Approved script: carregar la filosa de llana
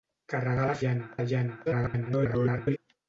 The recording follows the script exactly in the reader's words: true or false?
false